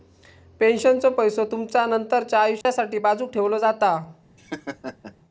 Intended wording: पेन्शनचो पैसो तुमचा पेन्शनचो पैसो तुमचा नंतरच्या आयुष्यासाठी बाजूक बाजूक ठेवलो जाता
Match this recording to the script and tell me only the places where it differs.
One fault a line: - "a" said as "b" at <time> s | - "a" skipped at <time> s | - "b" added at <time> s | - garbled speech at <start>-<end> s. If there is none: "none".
- "पेन्शनचो पैसो तुमचा" skipped at 1.8 s
- "बाजूक" skipped at 3.3 s